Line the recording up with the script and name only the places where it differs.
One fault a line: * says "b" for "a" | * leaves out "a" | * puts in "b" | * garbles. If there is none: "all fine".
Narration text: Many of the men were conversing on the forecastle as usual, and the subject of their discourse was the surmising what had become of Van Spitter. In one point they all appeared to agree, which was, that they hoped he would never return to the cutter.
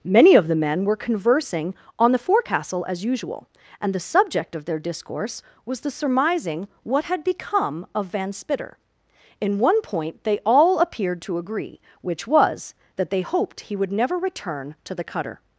all fine